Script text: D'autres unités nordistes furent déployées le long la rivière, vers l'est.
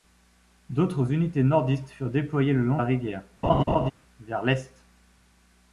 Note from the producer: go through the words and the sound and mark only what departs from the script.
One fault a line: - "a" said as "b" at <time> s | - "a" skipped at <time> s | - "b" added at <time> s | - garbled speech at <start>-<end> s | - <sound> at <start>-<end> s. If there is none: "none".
- laugh at 3.4-3.9 s